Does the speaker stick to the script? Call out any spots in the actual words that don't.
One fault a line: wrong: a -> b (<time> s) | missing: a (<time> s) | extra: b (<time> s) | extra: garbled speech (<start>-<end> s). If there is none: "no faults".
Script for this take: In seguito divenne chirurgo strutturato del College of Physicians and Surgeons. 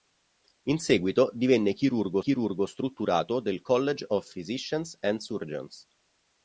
extra: chirurgo (2.2 s)